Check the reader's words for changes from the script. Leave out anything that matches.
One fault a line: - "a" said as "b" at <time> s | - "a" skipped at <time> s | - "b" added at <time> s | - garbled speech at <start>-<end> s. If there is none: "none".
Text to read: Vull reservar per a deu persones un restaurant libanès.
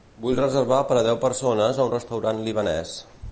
- "a" added at 1.8 s